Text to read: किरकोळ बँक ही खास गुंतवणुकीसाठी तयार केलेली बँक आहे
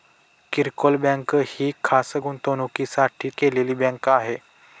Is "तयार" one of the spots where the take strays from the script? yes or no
yes